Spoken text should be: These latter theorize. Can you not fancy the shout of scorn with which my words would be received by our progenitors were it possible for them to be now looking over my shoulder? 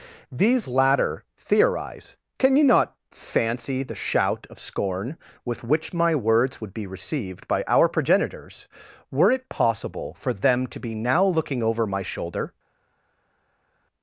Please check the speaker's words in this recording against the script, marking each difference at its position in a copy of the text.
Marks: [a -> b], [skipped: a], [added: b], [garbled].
These latter theorize. Can you not fancy the shout of scorn with which my words would be received by our progenitors were it possible for them to be now looking over my shoulder?